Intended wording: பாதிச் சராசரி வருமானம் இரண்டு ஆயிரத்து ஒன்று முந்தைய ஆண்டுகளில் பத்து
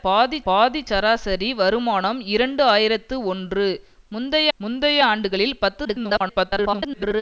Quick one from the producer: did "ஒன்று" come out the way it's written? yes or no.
yes